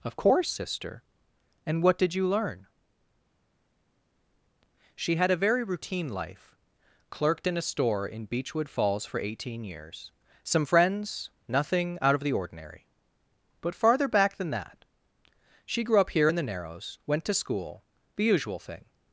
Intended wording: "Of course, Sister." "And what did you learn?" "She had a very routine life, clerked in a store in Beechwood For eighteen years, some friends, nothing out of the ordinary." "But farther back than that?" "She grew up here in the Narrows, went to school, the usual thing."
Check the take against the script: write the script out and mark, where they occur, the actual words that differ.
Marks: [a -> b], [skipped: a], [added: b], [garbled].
"Of course, Sister." "And what did you learn?" "She had a very routine life, clerked in a store in Beechwood [added: Falls] For eighteen years, some friends, nothing out of the ordinary." "But farther back than that?" "She grew up here in the Narrows, went to school, the usual thing."